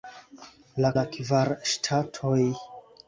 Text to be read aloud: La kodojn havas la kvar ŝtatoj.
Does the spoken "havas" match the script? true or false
false